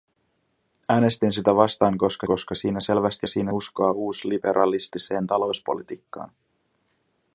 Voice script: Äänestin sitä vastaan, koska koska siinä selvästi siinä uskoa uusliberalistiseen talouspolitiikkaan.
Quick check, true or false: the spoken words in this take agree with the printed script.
true